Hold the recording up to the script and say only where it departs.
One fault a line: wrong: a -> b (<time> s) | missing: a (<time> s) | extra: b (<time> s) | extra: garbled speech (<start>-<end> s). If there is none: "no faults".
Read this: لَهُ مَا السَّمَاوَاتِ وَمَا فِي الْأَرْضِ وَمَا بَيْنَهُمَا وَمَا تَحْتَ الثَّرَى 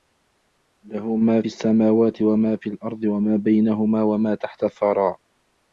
no faults